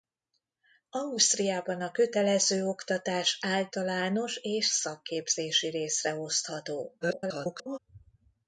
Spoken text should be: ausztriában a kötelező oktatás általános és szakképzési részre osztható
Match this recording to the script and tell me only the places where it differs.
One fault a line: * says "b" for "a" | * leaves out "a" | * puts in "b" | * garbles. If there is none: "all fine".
* garbles